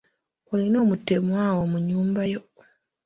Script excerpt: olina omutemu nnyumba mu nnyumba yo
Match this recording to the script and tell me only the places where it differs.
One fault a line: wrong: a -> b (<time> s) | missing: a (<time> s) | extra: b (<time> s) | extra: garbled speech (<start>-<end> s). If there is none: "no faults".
wrong: nnyumba -> awo (1.5 s)